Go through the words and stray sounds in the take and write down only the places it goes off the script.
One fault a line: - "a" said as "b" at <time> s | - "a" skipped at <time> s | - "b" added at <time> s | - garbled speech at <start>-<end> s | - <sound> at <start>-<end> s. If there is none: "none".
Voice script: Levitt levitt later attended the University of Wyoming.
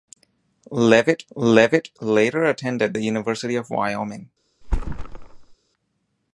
- thud at 4.6-5.6 s